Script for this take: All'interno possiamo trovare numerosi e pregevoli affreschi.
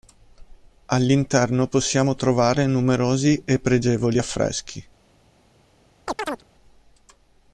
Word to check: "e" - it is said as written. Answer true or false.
true